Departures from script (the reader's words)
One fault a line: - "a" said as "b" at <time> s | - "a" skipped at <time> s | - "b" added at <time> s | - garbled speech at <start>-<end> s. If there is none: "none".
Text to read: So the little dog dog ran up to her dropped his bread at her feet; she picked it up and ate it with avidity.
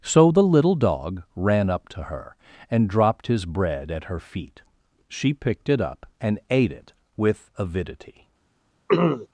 - "dog" skipped at 1.2 s
- "and" added at 2.7 s